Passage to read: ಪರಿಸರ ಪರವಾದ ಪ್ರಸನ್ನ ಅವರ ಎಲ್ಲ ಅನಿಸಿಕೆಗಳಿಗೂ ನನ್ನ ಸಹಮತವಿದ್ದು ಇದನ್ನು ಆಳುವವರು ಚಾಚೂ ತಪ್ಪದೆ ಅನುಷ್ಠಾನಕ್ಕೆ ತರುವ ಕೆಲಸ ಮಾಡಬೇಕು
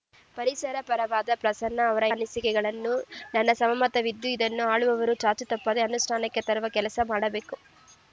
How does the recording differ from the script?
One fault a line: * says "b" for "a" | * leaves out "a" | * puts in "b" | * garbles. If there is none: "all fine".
* leaves out "ಎಲ್ಲ"